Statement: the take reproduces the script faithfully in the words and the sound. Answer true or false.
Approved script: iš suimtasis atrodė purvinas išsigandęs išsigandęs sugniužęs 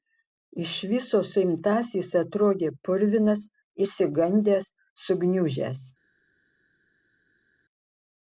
false